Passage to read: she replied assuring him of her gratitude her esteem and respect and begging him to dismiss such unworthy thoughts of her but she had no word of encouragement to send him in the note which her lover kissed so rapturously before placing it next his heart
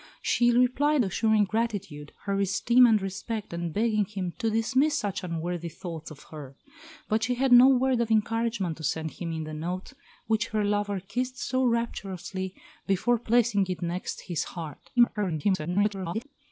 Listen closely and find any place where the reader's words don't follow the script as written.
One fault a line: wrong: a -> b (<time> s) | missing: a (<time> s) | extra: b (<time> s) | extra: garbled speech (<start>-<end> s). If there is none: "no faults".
missing: him of her (1.5 s)
extra: garbled speech (15.0-16.2 s)